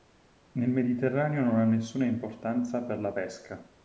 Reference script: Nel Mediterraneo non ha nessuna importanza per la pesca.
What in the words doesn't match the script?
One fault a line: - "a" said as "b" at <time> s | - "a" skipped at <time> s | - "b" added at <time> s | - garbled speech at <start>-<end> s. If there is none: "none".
none